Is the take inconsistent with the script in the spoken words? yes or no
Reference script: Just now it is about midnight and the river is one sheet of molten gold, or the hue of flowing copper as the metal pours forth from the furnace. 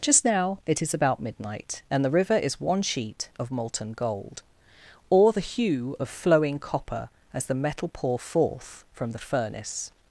yes